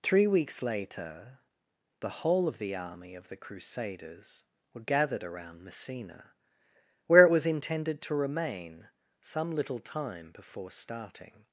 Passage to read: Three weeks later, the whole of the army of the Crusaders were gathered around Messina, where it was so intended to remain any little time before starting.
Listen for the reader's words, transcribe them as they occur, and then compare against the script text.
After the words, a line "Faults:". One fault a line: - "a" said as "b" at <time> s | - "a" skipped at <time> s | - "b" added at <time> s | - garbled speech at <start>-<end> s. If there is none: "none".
Three weeks later, the whole of the army of the Crusaders were gathered around Messina, where it was intended to remain some little time before starting.
Faults:
- "so" skipped at 7.4 s
- "any" said as "some" at 9.2 s